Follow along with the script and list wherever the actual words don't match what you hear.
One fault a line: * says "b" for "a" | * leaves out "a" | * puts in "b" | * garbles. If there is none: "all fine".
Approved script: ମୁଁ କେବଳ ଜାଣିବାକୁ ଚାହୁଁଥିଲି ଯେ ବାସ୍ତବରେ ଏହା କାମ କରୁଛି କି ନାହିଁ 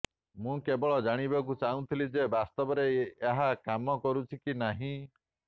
all fine